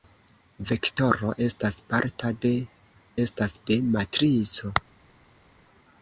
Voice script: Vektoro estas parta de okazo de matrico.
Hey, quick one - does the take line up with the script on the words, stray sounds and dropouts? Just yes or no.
no